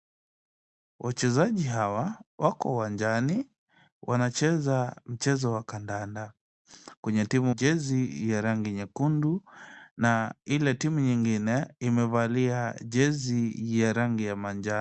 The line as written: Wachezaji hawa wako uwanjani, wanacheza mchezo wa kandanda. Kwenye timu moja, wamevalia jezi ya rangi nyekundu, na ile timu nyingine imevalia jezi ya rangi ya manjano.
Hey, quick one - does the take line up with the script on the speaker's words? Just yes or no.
no